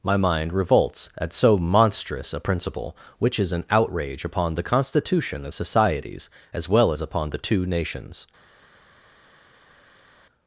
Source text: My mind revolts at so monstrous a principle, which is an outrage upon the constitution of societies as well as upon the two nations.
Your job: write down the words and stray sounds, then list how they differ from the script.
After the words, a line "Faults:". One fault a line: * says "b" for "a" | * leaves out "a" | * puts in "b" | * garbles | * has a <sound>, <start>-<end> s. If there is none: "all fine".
My mind revolts at so monstrous a principle, which is an outrage upon the constitution of societies as well as upon the two nations.
Faults:
all fine